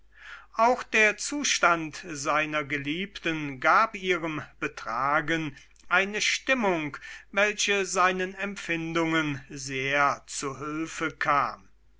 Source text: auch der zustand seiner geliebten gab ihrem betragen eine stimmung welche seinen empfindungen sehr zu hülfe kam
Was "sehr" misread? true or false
false